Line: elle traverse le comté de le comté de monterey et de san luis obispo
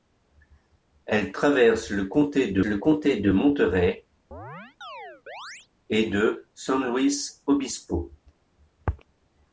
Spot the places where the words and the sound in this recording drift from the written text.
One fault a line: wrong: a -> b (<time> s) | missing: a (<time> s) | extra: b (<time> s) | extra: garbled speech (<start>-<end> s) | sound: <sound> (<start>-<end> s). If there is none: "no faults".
sound: chirp (4.3-5.7 s)